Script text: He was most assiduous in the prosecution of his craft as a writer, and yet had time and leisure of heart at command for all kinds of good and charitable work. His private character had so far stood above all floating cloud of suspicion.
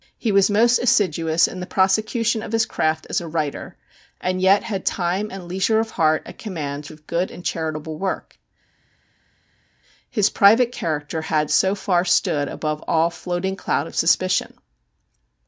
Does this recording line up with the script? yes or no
no